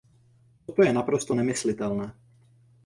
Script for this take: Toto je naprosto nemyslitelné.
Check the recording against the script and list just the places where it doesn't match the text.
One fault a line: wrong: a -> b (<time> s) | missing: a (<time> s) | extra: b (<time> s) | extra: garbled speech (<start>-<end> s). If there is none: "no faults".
no faults